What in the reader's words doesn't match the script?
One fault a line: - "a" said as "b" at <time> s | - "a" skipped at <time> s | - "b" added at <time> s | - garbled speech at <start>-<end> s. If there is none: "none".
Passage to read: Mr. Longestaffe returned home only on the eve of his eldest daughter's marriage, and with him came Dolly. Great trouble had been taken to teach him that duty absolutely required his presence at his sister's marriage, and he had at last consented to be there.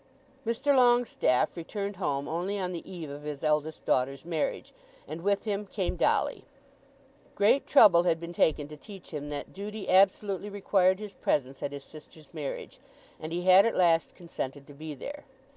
none